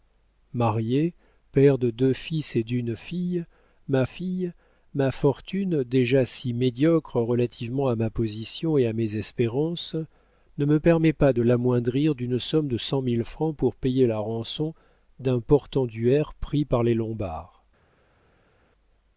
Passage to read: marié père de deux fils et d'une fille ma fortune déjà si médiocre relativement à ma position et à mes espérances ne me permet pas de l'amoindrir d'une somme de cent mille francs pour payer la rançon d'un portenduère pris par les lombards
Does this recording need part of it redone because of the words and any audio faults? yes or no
yes